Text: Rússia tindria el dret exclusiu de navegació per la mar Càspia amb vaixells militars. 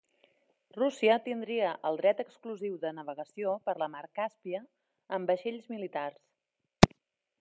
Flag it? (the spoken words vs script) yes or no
no